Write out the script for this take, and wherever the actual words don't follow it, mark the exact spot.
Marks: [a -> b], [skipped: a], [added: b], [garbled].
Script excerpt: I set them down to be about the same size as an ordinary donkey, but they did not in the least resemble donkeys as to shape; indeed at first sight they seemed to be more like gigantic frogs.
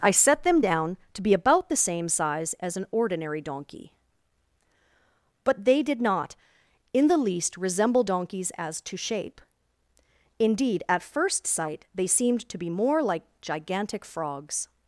I set them down to be about the same size as an ordinary donkey, but they did not in the least resemble donkeys as to shape; indeed at first sight they seemed to be more like gigantic frogs.